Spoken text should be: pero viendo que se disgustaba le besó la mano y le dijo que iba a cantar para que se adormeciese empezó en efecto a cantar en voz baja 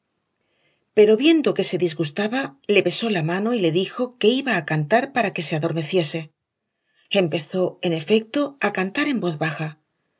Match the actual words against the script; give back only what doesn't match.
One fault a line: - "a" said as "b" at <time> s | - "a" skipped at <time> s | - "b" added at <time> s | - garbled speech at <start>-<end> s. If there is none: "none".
none